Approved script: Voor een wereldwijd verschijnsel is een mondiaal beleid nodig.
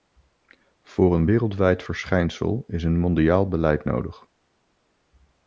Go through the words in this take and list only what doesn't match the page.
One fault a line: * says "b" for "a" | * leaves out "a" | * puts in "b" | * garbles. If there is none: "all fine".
all fine